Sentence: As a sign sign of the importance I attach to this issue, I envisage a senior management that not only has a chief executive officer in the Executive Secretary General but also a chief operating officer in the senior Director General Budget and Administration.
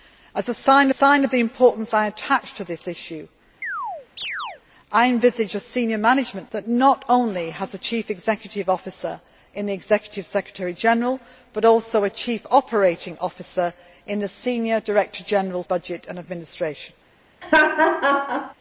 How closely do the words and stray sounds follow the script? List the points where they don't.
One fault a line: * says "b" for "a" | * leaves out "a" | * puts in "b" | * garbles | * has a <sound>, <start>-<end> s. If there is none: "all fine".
* has a chirp, 3.6-4.6 s
* has a laugh, 17.4-18.5 s